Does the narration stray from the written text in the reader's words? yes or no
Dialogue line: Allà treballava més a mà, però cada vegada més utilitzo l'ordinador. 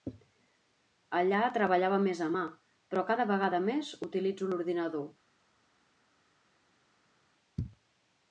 no